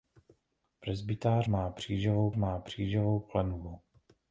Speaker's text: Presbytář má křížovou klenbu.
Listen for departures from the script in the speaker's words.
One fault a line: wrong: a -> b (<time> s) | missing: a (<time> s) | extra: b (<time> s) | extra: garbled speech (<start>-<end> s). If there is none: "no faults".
extra: má křížovou (2.4 s)